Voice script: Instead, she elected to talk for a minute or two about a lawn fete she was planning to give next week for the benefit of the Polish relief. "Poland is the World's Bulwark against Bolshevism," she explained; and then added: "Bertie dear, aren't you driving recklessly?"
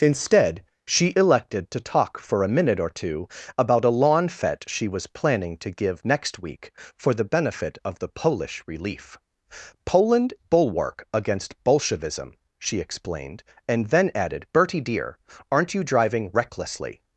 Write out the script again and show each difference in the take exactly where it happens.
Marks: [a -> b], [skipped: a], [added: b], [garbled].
Instead, she elected to talk for a minute or two about a lawn fete she was planning to give next week for the benefit of the Polish relief. "Poland [skipped: is the World's] Bulwark against Bolshevism," she explained; and then added: "Bertie dear, aren't you driving recklessly?"